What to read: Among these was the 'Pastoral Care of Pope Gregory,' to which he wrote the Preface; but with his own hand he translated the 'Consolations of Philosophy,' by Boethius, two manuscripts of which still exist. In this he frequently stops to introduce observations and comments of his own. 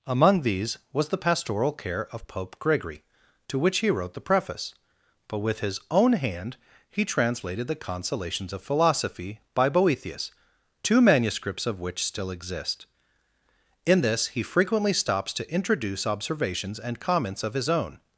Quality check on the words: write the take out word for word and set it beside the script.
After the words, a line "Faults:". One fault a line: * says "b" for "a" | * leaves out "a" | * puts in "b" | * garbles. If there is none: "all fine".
Among these was the 'Pastoral Care of Pope Gregory,' to which he wrote the Preface; but with his own hand he translated the 'Consolations of Philosophy,' by Boethius, two manuscripts of which still exist. In this he frequently stops to introduce observations and comments of his own.
Faults:
all fine